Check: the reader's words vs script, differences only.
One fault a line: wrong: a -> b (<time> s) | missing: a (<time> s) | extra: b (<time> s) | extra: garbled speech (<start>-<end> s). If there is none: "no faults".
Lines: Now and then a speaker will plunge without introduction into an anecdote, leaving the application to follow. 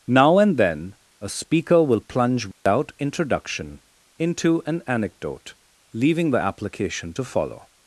no faults